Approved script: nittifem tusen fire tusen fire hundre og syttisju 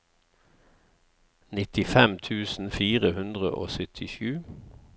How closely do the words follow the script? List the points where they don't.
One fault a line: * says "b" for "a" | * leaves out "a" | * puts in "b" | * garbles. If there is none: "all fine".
* leaves out "tusen fire"